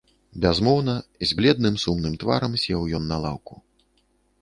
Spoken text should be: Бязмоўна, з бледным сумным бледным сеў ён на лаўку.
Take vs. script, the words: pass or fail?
fail